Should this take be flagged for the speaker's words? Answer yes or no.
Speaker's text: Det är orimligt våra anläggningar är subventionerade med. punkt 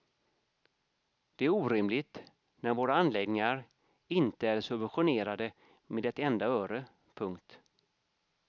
yes